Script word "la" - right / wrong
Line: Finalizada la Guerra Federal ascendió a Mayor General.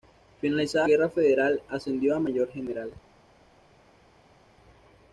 wrong